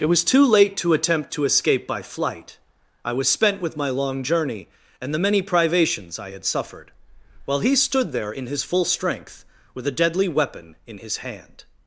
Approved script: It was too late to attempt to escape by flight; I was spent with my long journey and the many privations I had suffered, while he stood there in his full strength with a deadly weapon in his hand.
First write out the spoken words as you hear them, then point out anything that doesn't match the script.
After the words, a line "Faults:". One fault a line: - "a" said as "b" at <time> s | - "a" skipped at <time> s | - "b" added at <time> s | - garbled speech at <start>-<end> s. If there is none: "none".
It was too late to attempt to escape by flight; I was spent with my long journey and the many privations I had suffered, while he stood there in his full strength with a deadly weapon in his hand.
Faults:
none